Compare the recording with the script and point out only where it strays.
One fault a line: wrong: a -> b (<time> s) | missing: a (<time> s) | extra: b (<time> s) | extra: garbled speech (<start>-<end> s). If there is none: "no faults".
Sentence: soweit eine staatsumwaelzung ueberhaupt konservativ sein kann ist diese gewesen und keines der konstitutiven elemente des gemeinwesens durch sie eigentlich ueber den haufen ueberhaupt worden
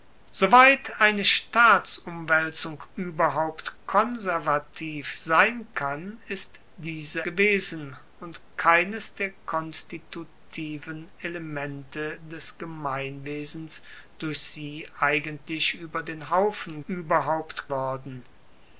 no faults